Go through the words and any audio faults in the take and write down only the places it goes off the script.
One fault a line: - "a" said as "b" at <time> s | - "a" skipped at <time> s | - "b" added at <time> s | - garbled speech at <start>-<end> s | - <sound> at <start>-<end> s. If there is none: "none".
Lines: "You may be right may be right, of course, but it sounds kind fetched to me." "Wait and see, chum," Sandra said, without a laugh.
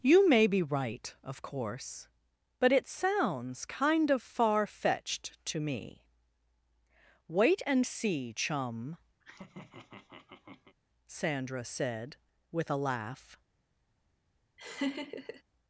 - "may be right" skipped at 1.1 s
- "of far" added at 4.1 s
- laugh at 9.2-10.8 s
- "without" said as "with" at 12.5 s
- laugh at 14.6-15.4 s